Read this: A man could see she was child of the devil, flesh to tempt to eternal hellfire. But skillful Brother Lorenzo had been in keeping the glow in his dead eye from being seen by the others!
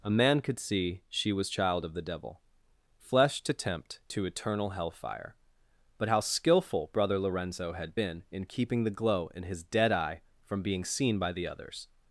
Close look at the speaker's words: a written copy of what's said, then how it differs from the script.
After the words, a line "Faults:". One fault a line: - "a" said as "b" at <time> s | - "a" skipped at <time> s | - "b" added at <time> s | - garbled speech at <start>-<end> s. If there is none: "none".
A man could see she was child of the devil, flesh to tempt to eternal hellfire. But how skillful Brother Lorenzo had been in keeping the glow in his dead eye from being seen by the others!
Faults:
- "how" added at 6.1 s